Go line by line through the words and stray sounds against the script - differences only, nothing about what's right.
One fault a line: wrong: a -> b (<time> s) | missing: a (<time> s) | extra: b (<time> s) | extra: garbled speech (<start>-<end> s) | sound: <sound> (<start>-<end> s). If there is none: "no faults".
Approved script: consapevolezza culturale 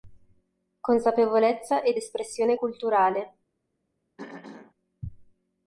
extra: ed espressione (1.8 s)
sound: throat clearing (4.2-4.7 s)